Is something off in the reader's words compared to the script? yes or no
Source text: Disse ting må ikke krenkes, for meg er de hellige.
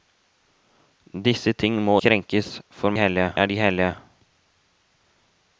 yes